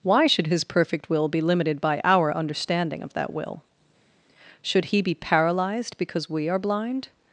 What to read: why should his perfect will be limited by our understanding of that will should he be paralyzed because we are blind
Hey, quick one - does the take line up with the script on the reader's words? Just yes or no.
yes